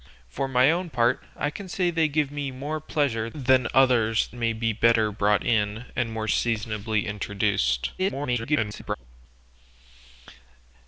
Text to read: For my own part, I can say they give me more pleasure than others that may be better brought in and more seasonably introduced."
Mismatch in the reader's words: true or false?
true